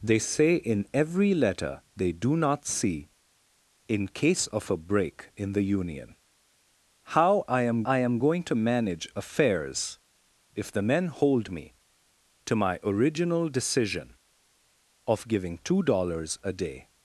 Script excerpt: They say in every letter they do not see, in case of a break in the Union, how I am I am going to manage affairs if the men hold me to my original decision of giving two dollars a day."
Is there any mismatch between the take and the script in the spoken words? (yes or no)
no